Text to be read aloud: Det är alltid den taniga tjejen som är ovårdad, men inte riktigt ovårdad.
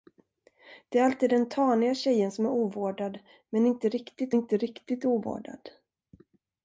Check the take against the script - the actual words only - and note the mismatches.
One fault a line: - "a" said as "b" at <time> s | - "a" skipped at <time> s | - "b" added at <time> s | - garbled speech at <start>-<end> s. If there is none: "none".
- "inte riktigt" added at 4.3 s